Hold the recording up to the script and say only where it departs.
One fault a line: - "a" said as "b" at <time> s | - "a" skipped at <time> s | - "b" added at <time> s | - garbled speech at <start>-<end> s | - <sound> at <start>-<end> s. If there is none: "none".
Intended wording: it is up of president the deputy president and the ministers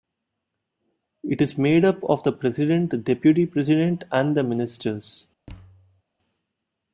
- "made" added at 1.6 s
- "the" added at 2.2 s
- thud at 5.5-6.0 s